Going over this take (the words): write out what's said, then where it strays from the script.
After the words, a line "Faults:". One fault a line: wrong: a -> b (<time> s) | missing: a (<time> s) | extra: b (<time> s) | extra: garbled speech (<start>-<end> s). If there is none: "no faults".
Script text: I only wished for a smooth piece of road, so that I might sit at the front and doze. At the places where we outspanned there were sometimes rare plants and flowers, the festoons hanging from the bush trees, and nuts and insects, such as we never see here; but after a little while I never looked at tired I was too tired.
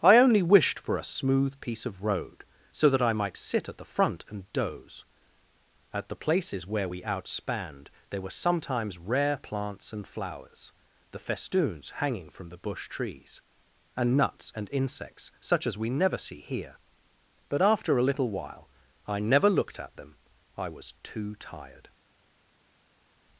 I only wished for a smooth piece of road, so that I might sit at the front and doze. At the places where we outspanned there were sometimes rare plants and flowers, the festoons hanging from the bush trees, and nuts and insects, such as we never see here; but after a little while I never looked at them I was too tired.
Faults:
wrong: tired -> them (20.0 s)